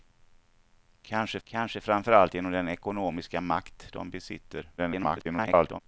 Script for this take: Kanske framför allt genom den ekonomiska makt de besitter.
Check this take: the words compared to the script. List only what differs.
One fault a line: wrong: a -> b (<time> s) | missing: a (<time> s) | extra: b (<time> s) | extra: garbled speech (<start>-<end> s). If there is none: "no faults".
extra: kanske (1.4 s)
extra: garbled speech (4.8-5.8 s)